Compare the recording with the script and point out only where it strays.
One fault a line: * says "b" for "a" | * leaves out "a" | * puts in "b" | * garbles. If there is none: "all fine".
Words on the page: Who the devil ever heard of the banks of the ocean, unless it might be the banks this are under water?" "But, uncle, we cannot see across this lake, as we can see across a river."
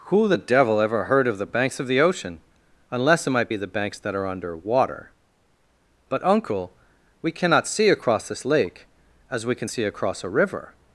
* says "that" for "this"